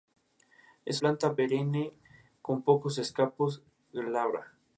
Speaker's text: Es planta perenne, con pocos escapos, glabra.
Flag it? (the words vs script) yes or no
no